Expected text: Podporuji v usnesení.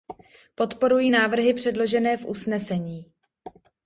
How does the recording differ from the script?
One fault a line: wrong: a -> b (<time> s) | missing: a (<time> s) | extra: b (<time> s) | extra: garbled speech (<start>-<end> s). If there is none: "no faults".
extra: návrhy předložené (1.1 s)